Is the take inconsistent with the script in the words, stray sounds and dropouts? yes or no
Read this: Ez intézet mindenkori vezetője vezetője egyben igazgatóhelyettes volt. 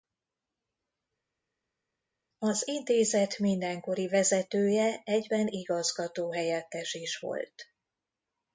yes